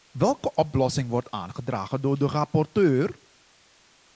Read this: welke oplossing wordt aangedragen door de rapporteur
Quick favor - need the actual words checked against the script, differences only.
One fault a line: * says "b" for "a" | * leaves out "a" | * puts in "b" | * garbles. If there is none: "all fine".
all fine